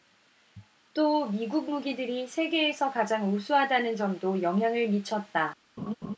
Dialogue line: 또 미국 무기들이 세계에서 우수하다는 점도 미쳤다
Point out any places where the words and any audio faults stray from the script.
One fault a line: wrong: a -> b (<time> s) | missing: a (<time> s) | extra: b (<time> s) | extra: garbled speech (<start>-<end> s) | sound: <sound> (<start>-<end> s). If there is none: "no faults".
extra: 가장 (2.9 s)
extra: 영향을 (4.4 s)
sound: laugh (5.8-6.2 s)